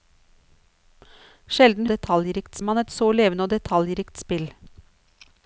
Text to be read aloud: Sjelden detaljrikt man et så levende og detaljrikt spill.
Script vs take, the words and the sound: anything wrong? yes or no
no